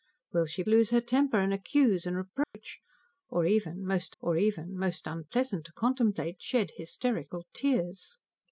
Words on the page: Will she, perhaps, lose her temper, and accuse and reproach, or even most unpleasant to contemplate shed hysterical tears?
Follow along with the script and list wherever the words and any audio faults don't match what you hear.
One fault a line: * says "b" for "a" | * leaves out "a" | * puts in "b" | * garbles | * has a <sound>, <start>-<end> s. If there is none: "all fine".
* leaves out "perhaps"
* has a dropout, 2.4-2.5 s
* puts in "or even most"